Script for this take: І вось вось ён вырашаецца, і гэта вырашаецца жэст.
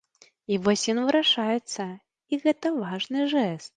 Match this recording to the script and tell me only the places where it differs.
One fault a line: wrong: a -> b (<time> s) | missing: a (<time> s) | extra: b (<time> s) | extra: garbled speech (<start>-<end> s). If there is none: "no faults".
missing: вось (0.8 s)
wrong: вырашаецца -> важны (2.8 s)